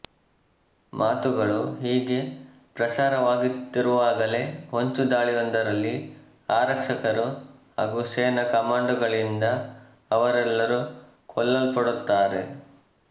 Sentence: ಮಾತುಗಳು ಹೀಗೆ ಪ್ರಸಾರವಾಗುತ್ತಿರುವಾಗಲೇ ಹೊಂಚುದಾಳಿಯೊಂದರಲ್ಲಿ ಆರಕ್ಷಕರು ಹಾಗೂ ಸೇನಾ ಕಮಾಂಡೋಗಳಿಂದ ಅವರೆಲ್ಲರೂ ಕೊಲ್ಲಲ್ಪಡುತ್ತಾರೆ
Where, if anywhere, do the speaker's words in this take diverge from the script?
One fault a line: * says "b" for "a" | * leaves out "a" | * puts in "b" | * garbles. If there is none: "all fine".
all fine